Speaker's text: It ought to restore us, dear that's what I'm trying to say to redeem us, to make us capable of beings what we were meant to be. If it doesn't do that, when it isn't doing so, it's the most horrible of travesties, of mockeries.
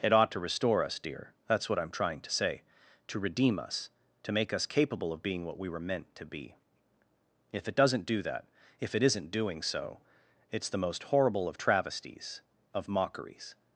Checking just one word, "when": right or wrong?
wrong